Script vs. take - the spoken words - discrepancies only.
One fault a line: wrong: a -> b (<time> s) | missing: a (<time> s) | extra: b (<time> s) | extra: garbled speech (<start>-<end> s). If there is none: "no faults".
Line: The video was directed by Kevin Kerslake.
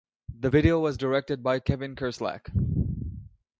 no faults